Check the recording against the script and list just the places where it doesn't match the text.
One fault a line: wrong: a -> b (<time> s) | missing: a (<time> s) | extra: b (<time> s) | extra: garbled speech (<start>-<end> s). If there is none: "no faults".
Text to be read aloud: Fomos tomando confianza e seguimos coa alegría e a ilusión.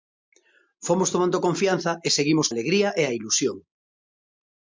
missing: coa (2.5 s)